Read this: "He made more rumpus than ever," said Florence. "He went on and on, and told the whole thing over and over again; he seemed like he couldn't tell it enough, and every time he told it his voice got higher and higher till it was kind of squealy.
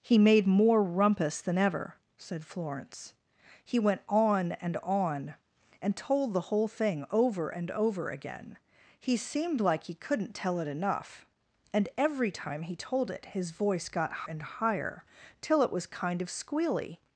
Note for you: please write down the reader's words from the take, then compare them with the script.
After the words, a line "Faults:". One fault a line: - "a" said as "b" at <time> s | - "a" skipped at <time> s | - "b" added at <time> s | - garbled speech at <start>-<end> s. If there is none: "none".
"He made more rumpus than ever," said Florence. "He went on and on, and told the whole thing over and over again; he seemed like he couldn't tell it enough, and every time he told it his voice got and higher till it was kind of squealy.
Faults:
- "higher" skipped at 14.2 s